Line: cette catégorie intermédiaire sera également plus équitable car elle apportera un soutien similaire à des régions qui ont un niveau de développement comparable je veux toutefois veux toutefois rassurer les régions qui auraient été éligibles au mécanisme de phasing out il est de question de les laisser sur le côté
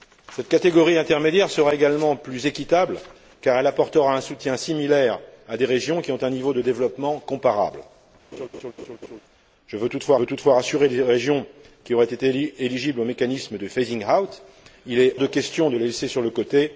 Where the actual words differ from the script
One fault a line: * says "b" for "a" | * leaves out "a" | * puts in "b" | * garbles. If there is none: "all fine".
all fine